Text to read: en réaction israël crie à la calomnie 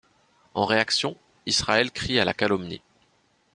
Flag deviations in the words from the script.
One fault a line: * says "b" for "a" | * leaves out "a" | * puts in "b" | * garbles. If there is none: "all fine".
all fine